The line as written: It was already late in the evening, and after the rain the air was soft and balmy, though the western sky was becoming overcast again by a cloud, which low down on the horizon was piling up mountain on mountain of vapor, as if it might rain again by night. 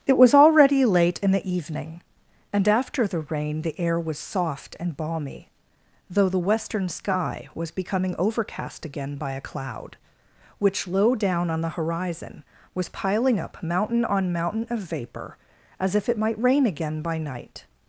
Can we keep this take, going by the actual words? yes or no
yes